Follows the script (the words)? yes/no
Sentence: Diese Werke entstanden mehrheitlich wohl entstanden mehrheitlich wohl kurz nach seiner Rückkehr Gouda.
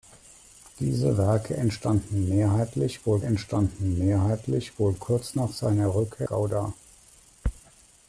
yes